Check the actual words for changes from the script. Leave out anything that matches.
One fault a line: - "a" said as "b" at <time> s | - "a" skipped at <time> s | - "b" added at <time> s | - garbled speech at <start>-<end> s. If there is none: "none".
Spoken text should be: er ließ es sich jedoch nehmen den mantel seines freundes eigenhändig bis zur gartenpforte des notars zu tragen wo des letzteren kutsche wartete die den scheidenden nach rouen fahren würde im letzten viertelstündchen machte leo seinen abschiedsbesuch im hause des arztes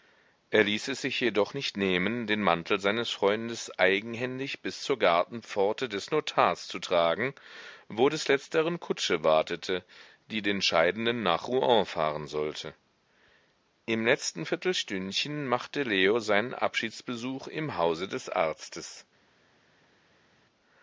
- "nicht" added at 1.5 s
- "würde" said as "sollte" at 12.2 s